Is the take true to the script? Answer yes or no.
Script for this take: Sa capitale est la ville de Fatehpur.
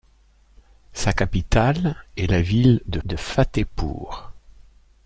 no